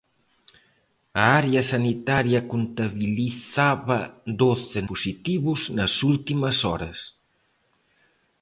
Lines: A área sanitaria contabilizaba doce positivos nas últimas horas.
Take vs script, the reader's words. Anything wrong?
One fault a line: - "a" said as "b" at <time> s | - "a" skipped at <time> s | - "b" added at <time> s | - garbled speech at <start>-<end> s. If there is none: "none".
none